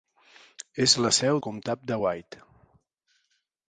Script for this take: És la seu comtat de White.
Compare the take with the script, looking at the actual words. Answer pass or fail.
pass